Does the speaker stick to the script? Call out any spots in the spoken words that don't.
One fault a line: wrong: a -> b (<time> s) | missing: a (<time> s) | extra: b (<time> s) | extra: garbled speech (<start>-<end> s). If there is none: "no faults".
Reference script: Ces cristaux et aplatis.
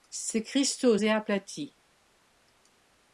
no faults